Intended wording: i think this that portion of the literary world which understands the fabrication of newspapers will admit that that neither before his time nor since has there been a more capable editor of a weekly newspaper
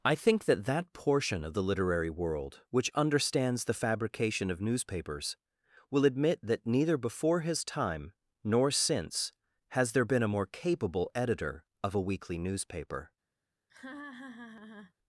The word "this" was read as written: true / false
false